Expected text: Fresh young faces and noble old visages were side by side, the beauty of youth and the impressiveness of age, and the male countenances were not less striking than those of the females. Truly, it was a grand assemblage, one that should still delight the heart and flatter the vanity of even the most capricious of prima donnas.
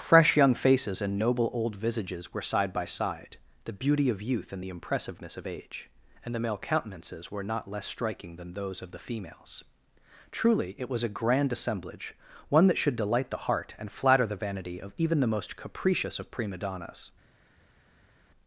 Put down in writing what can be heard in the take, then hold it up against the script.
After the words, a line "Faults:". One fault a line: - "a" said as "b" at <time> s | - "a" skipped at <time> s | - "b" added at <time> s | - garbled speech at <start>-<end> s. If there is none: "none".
Fresh young faces and noble old visages were side by side, the beauty of youth and the impressiveness of age, and the male countenances were not less striking than those of the females. Truly, it was a grand assemblage, one that should delight the heart and flatter the vanity of even the most capricious of prima donnas.
Faults:
- "still" skipped at 13.0 s